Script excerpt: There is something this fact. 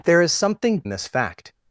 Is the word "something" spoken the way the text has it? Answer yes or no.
yes